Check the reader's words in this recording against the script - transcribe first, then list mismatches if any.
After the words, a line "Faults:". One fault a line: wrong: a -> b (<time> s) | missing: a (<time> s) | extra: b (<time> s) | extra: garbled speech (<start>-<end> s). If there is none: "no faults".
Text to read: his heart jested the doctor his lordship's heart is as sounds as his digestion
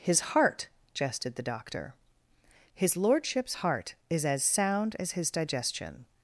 his heart jested the doctor his lordship's heart is as sound as his digestion
Faults:
wrong: sounds -> sound (4.4 s)